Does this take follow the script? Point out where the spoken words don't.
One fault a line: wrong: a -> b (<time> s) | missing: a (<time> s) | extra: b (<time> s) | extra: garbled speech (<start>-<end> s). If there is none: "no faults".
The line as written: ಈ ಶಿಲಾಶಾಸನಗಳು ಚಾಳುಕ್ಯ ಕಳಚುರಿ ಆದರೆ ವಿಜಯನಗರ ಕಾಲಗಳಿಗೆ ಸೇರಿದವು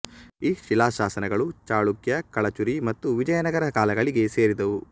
wrong: ಆದರೆ -> ಮತ್ತು (2.9 s)